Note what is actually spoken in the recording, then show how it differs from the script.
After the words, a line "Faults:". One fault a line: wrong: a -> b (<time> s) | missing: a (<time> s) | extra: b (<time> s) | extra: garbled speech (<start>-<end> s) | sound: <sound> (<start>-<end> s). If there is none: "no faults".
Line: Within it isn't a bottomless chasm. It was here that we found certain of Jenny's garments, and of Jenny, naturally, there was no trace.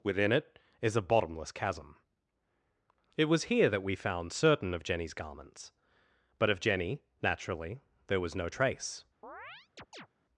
Within it is a bottomless chasm. It was here that we found certain of Jenny's garments, but of Jenny, naturally, there was no trace.
Faults:
wrong: isn't -> is (0.8 s)
wrong: and -> but (6.4 s)
sound: chirp (9.2-10.1 s)